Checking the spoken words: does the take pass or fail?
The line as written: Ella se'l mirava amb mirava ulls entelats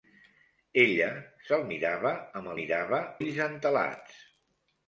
pass